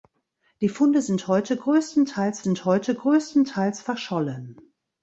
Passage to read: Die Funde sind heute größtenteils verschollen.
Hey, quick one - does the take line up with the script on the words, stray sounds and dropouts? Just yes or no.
no